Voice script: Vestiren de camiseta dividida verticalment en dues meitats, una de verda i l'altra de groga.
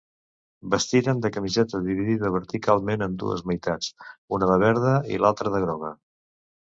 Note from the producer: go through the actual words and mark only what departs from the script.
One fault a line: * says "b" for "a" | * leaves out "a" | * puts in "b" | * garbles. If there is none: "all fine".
all fine